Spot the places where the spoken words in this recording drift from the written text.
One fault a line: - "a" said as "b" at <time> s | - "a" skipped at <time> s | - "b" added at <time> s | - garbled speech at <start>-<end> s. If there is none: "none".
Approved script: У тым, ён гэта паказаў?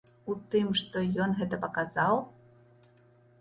- "што" added at 0.8 s